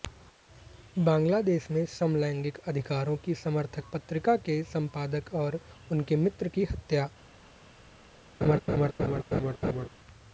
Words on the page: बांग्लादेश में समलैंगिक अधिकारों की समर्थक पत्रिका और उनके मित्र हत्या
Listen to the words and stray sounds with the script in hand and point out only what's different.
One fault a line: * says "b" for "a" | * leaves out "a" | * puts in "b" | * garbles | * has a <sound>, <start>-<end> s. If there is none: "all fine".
* puts in "के संपादक"
* puts in "की"
* has a laugh, 8.4-9.9 s